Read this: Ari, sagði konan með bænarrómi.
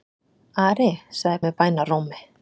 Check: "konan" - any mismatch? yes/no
yes